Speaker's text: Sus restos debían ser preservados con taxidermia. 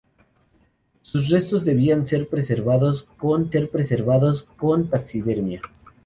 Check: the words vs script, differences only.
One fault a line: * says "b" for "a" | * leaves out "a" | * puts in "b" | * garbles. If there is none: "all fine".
* puts in "ser preservados con"